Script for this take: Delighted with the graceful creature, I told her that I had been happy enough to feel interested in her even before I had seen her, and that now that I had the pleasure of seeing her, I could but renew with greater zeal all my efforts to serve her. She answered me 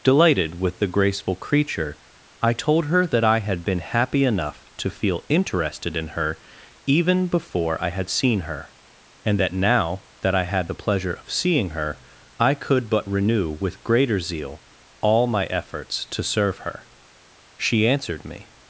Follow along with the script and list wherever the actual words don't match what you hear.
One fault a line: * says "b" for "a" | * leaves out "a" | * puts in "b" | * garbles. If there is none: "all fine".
all fine